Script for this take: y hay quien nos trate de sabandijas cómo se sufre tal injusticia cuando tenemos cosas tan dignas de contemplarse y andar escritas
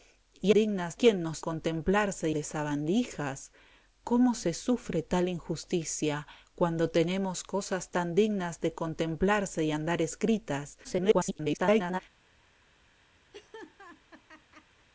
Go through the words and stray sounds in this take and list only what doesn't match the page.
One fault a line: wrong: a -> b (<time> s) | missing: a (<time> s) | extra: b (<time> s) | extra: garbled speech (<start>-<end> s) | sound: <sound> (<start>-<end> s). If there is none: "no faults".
wrong: hay -> dignas (0.5 s)
wrong: trate -> contemplarse (1.4 s)
extra: garbled speech (10.8-12.0 s)
sound: laugh (13.3-14.9 s)